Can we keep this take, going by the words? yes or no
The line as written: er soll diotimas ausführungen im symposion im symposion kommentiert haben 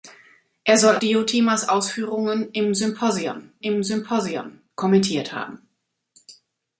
yes